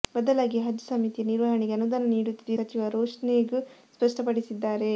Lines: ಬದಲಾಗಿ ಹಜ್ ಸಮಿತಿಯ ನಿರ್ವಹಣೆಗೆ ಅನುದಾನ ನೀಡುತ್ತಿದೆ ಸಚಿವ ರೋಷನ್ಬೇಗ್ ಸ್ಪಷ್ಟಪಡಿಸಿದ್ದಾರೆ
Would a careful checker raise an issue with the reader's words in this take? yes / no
no